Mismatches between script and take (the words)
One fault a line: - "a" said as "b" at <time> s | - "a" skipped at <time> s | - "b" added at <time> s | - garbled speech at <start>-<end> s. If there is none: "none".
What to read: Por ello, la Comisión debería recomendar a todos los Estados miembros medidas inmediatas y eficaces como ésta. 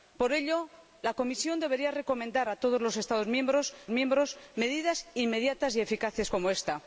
- "miembros" added at 3.9 s